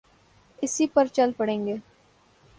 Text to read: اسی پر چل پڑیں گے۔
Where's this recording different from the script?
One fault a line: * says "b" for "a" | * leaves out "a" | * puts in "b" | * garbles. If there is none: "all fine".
all fine